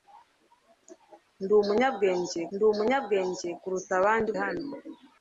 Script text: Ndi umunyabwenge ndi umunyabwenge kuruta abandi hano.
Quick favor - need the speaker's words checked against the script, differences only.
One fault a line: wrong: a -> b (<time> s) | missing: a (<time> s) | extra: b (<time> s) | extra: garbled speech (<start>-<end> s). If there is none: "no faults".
no faults